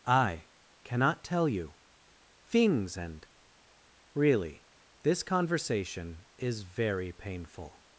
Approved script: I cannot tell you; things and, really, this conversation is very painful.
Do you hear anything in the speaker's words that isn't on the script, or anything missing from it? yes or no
no